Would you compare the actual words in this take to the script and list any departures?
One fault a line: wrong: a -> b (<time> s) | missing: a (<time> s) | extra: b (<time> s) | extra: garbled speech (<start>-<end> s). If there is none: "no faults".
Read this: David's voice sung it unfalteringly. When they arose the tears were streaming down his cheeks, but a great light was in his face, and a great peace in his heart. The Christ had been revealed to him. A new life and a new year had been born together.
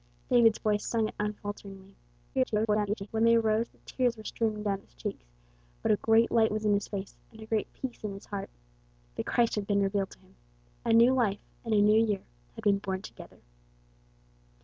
extra: garbled speech (2.3-3.1 s)